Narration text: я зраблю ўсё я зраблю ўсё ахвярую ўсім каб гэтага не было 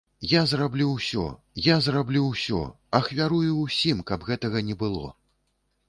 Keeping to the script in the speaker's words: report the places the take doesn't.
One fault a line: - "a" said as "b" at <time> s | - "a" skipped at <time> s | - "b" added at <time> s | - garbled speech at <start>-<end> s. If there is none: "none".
none